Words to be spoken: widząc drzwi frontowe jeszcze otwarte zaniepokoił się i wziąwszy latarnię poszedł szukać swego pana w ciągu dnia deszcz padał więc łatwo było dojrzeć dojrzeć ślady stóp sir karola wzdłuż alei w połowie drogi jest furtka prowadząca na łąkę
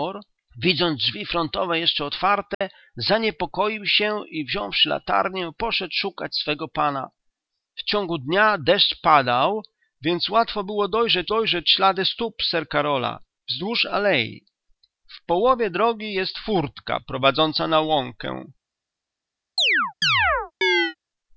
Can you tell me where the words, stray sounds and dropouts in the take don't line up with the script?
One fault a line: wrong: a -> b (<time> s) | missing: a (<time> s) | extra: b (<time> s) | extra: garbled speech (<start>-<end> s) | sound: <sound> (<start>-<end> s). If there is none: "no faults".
sound: dropout (2.5-2.6 s)
sound: chirp (19.6-21.0 s)